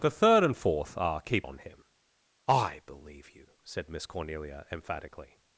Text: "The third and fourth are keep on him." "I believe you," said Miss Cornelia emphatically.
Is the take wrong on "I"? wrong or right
right